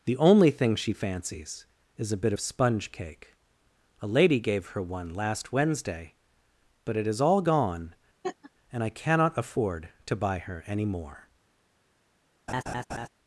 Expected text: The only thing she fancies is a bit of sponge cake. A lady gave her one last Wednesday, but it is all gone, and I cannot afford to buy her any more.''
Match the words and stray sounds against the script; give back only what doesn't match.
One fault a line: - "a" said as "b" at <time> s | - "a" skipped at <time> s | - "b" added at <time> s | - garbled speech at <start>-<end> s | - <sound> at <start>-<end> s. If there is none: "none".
- laugh at 8.2-8.5 s
- laugh at 12.5-13.1 s